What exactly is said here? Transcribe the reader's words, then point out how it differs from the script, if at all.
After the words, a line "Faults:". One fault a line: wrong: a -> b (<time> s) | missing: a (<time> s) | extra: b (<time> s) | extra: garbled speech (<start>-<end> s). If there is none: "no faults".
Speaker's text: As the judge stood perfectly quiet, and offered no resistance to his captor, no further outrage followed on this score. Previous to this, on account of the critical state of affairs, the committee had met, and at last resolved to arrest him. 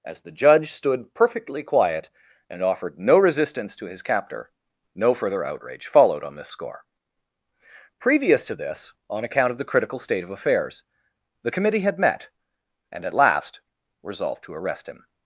As the judge stood perfectly quiet, and offered no resistance to his captor, no further outrage followed on this score. Previous to this, on account of the critical state of affairs, the committee had met, and at last resolved to arrest him.
Faults:
no faults